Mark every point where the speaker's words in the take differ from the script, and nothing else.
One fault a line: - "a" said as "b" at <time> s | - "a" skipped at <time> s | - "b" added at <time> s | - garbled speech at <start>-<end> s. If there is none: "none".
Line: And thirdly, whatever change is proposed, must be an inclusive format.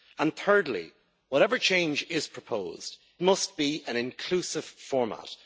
none